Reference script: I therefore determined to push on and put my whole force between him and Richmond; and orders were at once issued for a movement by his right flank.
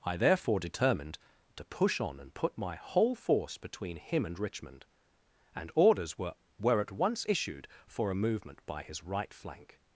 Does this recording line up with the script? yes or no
no